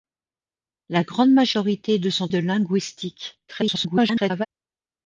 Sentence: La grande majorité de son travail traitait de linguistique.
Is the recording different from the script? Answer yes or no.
yes